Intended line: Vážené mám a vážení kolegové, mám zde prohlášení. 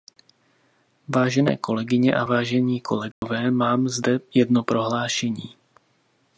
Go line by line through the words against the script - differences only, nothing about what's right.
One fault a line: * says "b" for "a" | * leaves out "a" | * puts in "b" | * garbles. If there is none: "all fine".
* says "kolegyně" for "mám"
* puts in "jedno"